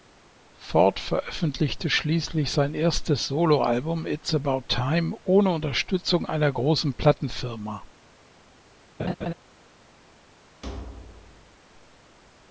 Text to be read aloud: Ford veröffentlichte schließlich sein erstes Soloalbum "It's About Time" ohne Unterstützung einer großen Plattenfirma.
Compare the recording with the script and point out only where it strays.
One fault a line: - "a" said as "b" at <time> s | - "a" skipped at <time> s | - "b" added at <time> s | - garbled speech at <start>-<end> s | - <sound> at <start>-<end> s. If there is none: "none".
- laugh at 9.0-9.3 s
- thud at 10.6-11.6 s